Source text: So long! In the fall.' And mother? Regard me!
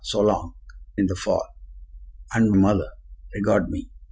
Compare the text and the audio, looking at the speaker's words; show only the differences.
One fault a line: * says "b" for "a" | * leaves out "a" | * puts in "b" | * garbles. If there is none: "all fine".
all fine